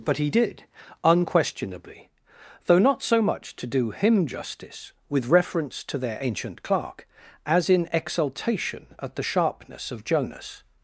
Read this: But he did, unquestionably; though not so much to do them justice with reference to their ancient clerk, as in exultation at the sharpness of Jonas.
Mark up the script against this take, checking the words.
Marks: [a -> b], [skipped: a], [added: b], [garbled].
But he did, unquestionably; though not so much to do [them -> him] justice with reference to their ancient clerk, as in exultation at the sharpness of Jonas.